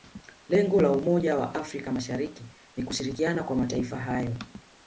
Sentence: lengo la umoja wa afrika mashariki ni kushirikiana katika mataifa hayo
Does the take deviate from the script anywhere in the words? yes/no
yes